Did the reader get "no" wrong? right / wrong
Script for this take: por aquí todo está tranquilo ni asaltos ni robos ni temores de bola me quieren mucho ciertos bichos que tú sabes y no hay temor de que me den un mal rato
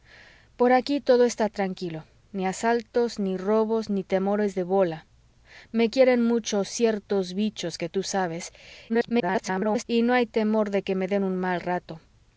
right